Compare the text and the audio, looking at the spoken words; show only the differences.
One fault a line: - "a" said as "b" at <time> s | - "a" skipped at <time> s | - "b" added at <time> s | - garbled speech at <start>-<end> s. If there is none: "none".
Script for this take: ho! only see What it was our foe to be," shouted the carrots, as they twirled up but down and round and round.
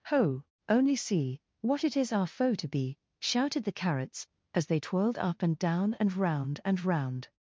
- "was" said as "is" at 1.9 s
- "but" said as "and" at 5.4 s